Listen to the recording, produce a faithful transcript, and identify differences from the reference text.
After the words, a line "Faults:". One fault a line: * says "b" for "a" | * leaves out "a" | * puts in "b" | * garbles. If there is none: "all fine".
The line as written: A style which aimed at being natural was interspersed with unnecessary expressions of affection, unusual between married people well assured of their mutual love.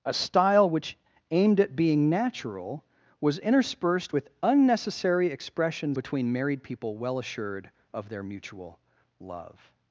A style which aimed at being natural was interspersed with unnecessary expressions between married people well assured of their mutual love.
Faults:
* leaves out "of affection unusual"